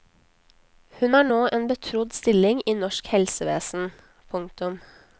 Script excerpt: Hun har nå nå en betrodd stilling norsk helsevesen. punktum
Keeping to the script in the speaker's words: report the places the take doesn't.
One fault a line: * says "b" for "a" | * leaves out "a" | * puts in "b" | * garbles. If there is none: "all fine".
* leaves out "nå"
* puts in "i"